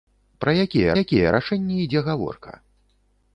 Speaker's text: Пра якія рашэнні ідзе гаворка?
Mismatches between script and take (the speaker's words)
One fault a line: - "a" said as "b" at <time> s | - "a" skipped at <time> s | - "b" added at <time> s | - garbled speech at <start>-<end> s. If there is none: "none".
- "якія" added at 1.0 s